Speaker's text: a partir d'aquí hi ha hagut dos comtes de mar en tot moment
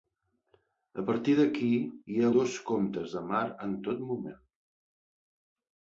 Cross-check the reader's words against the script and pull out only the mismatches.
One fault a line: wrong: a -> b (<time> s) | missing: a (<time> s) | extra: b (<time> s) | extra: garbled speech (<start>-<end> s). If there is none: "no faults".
missing: hagut (2.3 s)